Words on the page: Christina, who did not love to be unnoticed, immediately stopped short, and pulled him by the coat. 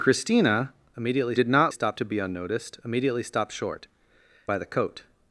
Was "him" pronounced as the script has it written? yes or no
no